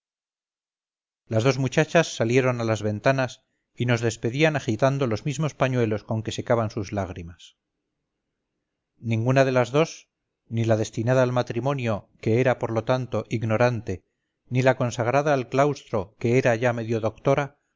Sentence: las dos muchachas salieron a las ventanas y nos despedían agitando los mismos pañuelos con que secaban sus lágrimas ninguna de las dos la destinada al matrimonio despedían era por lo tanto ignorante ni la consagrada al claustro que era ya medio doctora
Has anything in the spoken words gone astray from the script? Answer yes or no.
yes